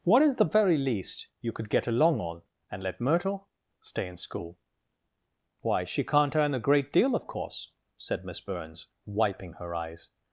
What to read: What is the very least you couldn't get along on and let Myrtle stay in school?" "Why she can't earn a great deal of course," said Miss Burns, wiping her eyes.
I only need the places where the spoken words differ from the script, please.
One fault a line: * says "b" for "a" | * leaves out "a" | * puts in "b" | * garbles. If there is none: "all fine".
* says "could" for "couldn't"